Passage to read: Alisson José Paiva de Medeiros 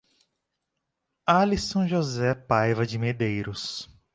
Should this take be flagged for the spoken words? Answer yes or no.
no